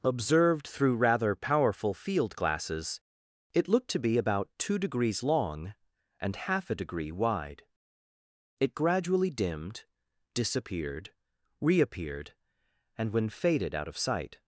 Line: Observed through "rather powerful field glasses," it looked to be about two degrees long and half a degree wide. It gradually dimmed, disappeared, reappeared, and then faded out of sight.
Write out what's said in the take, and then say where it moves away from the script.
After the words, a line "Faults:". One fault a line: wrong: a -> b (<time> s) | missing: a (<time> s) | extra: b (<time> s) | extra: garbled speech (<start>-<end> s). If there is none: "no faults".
Observed through "rather powerful field glasses," it looked to be about two degrees long and half a degree wide. It gradually dimmed, disappeared, reappeared, and when faded out of sight.
Faults:
wrong: then -> when (13.1 s)